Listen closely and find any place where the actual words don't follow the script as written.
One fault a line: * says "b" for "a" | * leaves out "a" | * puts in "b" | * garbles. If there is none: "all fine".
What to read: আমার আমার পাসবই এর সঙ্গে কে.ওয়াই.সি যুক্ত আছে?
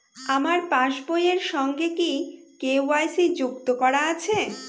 * leaves out "আমার"
* puts in "কি"
* puts in "করা"